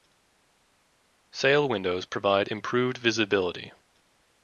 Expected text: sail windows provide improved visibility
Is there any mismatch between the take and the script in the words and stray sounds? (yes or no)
no